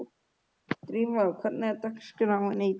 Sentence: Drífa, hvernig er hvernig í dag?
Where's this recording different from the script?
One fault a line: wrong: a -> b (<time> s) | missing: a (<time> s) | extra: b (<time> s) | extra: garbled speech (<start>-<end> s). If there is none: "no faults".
wrong: hvernig -> dagskráin (1.9 s)